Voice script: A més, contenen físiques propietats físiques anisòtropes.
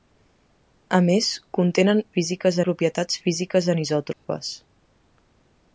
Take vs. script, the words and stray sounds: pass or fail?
fail